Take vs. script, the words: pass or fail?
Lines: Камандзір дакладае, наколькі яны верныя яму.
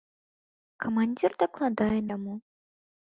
fail